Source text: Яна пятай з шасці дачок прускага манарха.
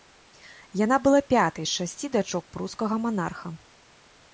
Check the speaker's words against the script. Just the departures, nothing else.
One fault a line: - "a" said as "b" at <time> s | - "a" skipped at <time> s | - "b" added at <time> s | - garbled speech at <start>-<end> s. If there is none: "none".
- "была" added at 1.1 s